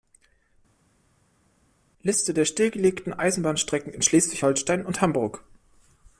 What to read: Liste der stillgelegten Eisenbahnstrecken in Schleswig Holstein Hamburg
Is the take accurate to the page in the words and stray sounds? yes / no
no